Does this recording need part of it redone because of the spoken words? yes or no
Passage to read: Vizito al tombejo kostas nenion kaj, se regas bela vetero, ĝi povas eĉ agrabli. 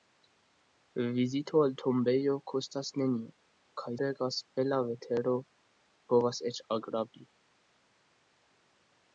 yes